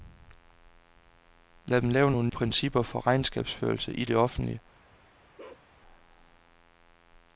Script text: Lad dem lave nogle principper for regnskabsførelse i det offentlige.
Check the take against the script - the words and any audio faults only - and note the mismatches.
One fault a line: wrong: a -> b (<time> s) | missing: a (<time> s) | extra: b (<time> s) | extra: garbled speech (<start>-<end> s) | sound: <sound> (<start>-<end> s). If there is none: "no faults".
sound: bark (5.4-5.7 s)